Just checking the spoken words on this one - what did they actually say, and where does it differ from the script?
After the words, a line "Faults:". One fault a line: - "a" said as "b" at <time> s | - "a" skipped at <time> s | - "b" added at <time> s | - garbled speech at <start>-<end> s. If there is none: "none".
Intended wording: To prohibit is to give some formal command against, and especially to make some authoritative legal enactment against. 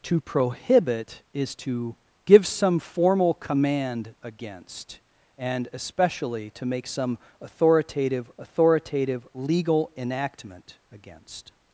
To prohibit is to give some formal command against, and especially to make some authoritative authoritative legal enactment against.
Faults:
- "authoritative" added at 8.4 s